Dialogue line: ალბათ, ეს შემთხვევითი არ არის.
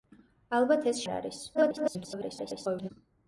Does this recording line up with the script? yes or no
no